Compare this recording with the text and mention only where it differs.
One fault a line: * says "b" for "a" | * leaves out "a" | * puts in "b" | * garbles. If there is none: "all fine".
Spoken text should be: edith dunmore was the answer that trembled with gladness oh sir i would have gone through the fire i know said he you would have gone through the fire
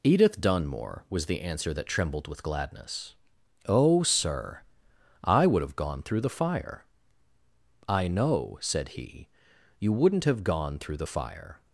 * says "wouldn't" for "would"